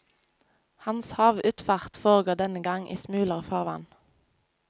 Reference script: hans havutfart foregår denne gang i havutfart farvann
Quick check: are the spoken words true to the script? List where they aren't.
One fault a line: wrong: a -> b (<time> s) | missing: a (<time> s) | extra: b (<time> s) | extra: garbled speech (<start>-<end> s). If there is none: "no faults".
wrong: havutfart -> smulere (2.9 s)